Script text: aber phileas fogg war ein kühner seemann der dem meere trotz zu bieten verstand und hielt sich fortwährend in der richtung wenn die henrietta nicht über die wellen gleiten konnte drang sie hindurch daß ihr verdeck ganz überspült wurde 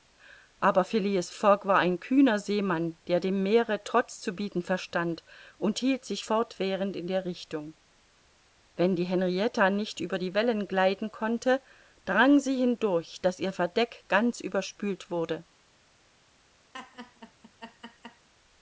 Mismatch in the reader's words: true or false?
false